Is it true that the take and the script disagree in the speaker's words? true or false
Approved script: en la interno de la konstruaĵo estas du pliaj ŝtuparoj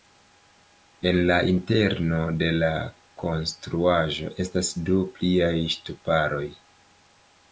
false